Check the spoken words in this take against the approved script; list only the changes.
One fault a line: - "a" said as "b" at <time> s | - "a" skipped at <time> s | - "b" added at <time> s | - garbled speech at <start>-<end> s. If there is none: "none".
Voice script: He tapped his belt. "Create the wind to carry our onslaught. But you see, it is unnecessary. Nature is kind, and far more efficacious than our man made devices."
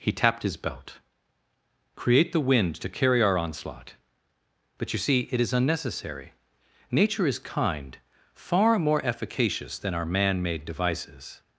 - "and" skipped at 8.0 s